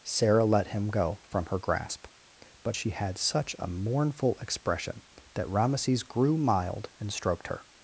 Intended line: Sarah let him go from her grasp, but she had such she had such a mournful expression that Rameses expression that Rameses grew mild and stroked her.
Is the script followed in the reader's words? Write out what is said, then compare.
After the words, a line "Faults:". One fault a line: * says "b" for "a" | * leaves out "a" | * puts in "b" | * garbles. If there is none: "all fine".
Sarah let him go from her grasp, but she had such a mournful expression that Rameses grew mild and stroked her.
Faults:
* leaves out "she had such"
* leaves out "expression that Rameses"